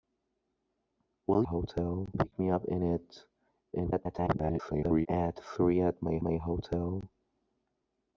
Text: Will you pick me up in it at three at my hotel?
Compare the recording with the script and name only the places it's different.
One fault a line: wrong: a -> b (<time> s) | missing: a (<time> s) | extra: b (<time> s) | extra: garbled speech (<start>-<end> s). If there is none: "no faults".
wrong: you -> hotel (1.4 s)
extra: garbled speech (3.7-5.1 s)
extra: my (6.2 s)